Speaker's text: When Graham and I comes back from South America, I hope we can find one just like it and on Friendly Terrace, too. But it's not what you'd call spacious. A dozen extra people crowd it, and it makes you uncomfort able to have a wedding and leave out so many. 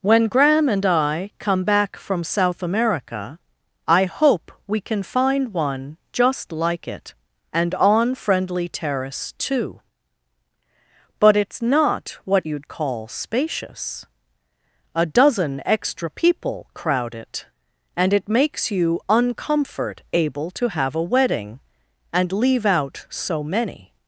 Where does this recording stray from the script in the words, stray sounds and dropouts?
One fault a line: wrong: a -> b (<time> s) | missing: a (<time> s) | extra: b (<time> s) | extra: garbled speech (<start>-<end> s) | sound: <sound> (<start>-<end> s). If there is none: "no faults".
wrong: comes -> come (1.4 s)